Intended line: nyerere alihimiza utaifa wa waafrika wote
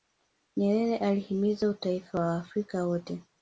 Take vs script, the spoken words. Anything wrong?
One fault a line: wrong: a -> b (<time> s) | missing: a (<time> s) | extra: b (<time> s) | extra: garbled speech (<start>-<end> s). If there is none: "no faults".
no faults